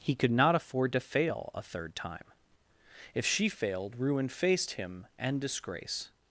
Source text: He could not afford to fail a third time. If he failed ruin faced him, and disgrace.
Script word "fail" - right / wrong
right